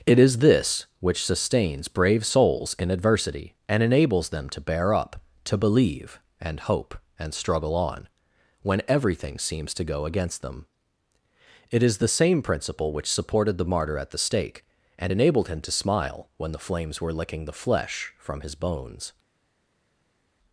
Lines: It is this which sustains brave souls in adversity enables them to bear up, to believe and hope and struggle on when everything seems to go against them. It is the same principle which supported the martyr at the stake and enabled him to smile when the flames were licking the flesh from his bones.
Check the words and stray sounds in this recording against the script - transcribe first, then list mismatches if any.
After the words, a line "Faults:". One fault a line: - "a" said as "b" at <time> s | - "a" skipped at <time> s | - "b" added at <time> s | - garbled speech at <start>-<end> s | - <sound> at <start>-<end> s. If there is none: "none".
It is this which sustains brave souls in adversity and enables them to bear up, to believe and hope and struggle on when everything seems to go against them. It is the same principle which supported the martyr at the stake and enabled him to smile when the flames were licking the flesh from his bones.
Faults:
- "and" added at 3.7 s